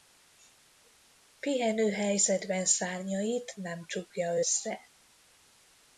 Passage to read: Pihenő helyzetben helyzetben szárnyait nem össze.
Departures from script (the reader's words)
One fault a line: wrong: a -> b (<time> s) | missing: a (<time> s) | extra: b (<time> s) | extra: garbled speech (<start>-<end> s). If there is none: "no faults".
missing: helyzetben (2.6 s)
extra: csukja (3.9 s)